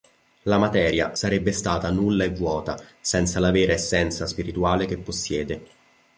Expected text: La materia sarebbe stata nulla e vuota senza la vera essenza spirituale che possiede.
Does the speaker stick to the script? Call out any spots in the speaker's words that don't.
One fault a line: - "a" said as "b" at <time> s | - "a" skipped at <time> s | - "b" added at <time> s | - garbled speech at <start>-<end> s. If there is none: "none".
none